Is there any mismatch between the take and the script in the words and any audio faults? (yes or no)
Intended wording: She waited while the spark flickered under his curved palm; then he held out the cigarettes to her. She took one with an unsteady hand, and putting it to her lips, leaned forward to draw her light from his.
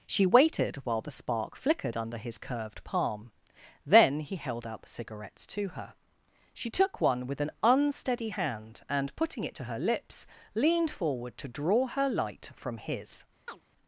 yes